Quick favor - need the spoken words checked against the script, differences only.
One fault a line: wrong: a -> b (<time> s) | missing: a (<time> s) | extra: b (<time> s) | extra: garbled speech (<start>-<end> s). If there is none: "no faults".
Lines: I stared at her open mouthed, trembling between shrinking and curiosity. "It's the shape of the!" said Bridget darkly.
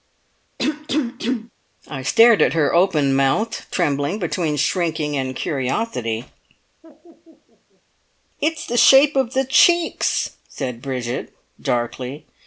extra: cheeks (9.5 s)